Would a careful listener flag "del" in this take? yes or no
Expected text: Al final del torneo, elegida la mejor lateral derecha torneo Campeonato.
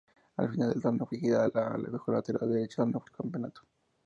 no